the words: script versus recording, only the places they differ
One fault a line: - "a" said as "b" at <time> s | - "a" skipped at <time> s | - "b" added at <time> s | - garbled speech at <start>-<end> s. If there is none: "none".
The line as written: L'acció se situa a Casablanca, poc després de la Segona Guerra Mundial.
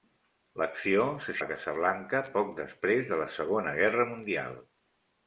- "situa" skipped at 1.4 s